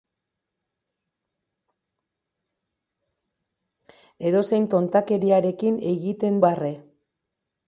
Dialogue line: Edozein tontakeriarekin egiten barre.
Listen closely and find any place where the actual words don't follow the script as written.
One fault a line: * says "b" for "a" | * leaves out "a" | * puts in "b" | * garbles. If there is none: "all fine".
all fine